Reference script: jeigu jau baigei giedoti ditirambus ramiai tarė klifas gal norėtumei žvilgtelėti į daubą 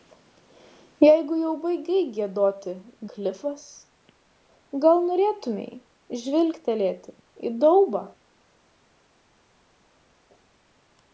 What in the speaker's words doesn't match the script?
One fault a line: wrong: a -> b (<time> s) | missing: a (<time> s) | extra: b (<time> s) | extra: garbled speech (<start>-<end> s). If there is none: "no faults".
missing: ditirambus ramiai tarė (2.7 s)